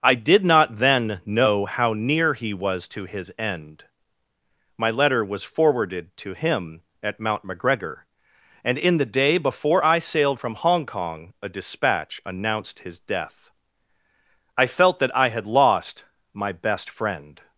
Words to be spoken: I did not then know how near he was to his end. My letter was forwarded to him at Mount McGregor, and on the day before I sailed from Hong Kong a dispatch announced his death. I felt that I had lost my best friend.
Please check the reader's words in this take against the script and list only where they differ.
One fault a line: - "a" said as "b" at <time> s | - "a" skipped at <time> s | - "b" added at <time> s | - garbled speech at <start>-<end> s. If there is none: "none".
- "on" said as "in" at 8.8 s